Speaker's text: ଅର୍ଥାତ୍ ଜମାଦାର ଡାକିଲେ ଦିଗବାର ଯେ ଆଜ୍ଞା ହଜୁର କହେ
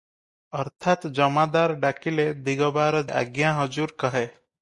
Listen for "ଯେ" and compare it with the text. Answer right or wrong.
wrong